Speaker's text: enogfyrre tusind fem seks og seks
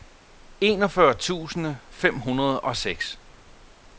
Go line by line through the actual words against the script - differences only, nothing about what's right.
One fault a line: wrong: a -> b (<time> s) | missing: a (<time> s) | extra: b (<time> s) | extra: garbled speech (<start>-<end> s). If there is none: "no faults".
wrong: seks -> hundrede (2.2 s)